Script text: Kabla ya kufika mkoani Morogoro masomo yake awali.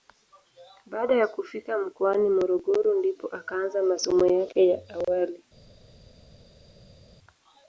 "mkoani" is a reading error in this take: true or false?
false